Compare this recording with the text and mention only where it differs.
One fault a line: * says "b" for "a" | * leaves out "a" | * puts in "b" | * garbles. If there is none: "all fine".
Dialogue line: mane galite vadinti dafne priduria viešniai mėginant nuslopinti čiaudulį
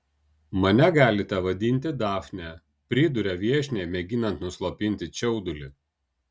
all fine